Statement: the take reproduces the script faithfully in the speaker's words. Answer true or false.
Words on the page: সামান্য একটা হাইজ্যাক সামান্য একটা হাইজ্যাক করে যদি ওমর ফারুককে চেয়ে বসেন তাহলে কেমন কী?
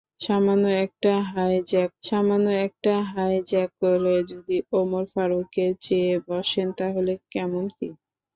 true